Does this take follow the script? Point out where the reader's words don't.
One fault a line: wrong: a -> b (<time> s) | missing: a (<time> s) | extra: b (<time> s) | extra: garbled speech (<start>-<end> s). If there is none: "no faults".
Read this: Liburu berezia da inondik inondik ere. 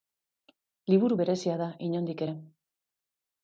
missing: inondik (2.3 s)